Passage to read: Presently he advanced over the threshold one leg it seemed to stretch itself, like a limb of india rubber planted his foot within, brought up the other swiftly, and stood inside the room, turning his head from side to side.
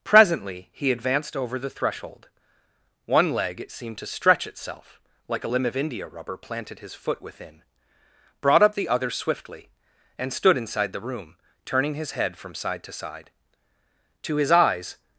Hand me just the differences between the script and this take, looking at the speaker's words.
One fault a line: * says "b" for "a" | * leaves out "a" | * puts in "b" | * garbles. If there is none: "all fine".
* puts in "To his eyes"